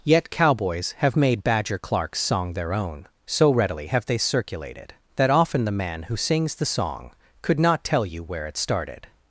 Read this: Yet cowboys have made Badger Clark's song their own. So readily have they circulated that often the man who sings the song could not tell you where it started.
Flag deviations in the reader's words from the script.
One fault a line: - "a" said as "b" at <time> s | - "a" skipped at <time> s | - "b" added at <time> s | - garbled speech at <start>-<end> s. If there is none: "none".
none